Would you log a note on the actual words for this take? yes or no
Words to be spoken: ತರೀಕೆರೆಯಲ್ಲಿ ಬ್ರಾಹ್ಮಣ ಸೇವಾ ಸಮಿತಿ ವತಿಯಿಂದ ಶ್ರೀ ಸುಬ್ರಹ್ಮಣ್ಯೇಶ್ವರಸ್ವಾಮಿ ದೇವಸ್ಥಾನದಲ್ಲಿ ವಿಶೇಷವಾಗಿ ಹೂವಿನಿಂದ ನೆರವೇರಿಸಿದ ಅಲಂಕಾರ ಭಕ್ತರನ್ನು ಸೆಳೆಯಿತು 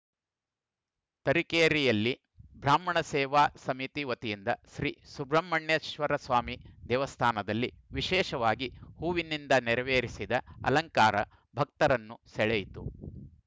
no